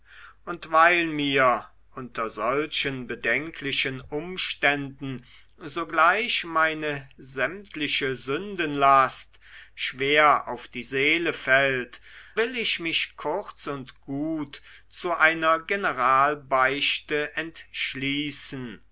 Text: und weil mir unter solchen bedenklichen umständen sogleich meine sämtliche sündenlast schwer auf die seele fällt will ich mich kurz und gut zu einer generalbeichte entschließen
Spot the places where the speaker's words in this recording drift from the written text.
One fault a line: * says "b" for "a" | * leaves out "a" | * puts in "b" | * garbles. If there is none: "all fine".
all fine